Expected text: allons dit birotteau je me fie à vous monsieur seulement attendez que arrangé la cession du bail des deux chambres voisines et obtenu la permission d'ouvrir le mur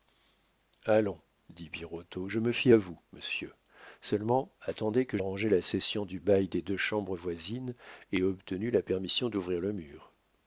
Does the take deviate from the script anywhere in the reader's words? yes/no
no